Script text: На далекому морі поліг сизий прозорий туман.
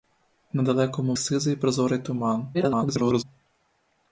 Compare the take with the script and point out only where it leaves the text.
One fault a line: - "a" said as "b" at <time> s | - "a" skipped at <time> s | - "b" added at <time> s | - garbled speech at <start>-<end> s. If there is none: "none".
- "морі поліг" skipped at 1.1 s
- garbled speech at 2.5-3.2 s